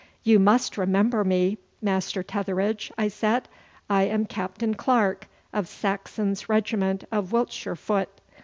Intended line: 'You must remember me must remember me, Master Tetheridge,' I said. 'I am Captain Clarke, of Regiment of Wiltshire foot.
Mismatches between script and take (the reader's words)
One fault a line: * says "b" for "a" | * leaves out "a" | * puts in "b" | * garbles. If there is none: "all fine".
* leaves out "must remember me"
* puts in "Saxon's"